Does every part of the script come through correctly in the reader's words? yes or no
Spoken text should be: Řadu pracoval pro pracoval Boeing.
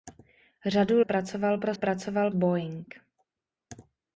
yes